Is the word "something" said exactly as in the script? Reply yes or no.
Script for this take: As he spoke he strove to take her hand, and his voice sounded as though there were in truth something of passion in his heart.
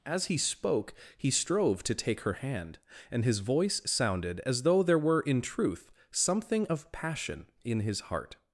yes